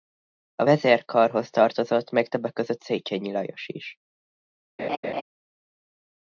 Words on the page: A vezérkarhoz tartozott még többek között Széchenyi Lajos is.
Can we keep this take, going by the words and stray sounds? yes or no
no